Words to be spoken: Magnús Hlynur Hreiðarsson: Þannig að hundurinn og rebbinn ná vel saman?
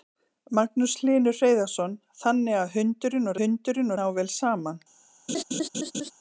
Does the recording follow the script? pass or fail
fail